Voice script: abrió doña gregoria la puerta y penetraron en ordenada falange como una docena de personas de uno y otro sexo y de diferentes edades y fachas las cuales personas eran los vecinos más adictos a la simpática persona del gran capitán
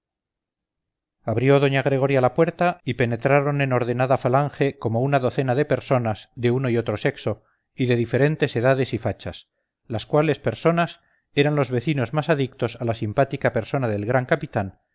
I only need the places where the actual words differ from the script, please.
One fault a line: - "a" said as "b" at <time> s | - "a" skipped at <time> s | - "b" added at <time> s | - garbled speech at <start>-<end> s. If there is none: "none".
none